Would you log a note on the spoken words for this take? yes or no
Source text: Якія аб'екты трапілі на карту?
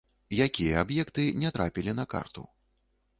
yes